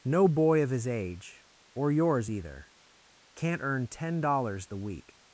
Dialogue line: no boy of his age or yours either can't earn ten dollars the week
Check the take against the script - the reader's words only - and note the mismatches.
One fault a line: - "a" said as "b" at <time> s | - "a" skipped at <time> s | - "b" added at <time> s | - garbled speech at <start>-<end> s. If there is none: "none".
none